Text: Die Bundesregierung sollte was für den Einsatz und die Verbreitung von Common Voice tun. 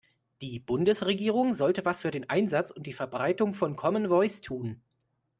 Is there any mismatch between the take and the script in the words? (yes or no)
no